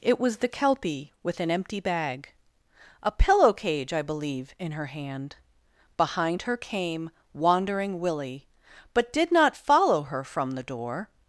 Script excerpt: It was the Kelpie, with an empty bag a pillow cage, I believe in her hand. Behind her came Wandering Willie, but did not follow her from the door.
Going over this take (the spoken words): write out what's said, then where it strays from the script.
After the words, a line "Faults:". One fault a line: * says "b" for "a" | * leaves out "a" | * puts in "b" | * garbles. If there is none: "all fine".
It was the Kelpie, with an empty bag a pillow cage, I believe in her hand. Behind her came Wandering Willie, but did not follow her from the door.
Faults:
all fine